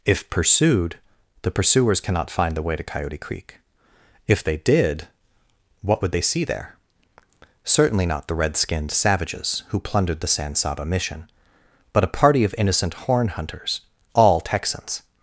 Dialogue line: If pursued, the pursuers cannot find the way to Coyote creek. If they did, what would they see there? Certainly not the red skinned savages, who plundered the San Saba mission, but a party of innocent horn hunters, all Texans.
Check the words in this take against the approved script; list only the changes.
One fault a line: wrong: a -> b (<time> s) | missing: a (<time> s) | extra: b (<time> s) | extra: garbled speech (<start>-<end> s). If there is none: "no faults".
no faults